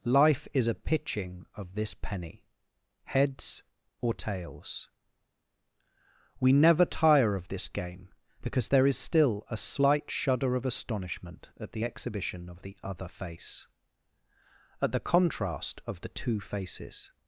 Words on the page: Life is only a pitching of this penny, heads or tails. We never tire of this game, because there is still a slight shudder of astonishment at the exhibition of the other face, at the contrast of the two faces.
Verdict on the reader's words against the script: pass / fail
fail